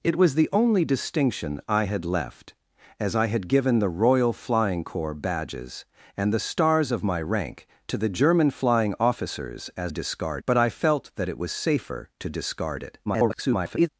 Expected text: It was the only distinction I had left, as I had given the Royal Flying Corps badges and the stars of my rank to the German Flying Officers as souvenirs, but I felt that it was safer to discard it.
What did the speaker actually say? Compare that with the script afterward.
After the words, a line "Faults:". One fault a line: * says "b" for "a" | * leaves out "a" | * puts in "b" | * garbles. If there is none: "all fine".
It was the only distinction I had left, as I had given the Royal Flying Corps badges and the stars of my rank to the German Flying Officers as discard, but I felt that it was safer to discard it. [garbled]
Faults:
* says "discard" for "souvenirs"
* garbles